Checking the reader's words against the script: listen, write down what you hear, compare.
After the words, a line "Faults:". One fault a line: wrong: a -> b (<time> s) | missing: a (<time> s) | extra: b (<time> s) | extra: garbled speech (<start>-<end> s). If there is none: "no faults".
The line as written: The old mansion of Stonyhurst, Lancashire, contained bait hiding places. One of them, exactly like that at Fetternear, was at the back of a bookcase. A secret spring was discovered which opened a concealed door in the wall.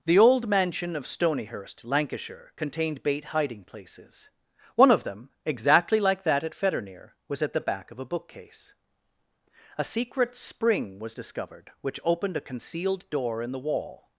The old mansion of Stonyhurst, Lancashire, contained bait hiding places. One of them, exactly like that at Fetternear, was at the back of a bookcase. A secret spring was discovered which opened a concealed door in the wall.
Faults:
no faults